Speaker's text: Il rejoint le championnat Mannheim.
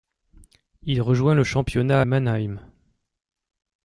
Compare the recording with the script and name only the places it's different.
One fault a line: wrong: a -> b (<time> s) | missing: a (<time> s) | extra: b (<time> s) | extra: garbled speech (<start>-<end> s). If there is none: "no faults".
no faults